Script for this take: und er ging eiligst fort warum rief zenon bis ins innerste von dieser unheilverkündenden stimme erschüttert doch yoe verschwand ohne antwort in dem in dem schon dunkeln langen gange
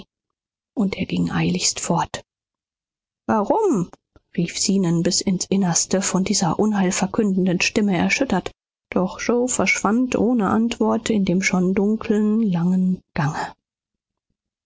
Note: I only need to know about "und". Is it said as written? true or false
true